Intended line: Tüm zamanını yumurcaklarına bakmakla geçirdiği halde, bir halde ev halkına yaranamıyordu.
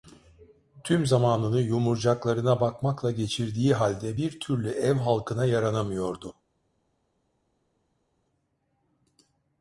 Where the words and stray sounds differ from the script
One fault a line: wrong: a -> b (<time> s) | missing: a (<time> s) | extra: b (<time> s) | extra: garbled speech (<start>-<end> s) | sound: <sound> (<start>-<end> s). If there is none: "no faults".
wrong: halde -> türlü (4.4 s)